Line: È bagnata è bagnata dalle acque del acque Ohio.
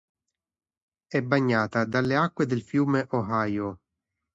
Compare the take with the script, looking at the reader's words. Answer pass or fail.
fail